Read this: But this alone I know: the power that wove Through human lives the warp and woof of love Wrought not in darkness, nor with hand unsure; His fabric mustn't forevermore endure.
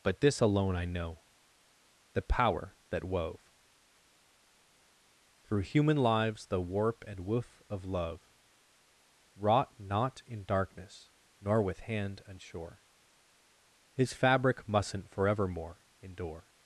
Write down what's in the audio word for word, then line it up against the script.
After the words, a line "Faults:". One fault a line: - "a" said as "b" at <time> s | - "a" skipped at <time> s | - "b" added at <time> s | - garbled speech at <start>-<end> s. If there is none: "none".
But this alone I know: the power that wove Through human lives the warp and woof of love Wrought not in darkness, nor with hand unsure; His fabric mustn't forevermore endure.
Faults:
none